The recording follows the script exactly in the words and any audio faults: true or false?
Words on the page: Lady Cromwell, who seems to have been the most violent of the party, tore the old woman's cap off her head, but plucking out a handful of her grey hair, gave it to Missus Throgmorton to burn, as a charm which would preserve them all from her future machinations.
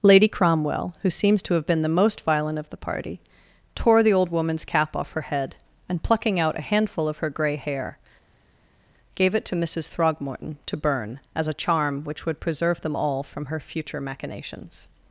false